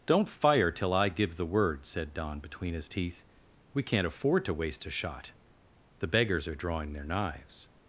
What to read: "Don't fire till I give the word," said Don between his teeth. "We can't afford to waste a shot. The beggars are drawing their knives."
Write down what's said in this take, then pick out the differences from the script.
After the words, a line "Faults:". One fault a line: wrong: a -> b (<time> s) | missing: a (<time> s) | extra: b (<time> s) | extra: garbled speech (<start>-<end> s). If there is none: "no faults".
"Don't fire till I give the word," said Don between his teeth. "We can't afford to waste a shot. The beggars are drawing their knives."
Faults:
no faults